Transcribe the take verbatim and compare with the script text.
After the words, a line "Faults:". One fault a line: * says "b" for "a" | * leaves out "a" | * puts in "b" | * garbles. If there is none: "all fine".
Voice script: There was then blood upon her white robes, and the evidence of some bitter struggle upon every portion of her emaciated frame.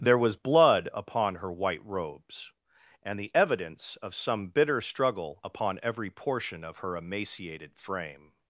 There was blood upon her white robes, and the evidence of some bitter struggle upon every portion of her emaciated frame.
Faults:
* leaves out "then"